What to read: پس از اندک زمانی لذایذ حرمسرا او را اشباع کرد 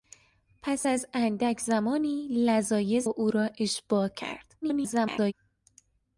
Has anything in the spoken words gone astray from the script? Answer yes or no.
yes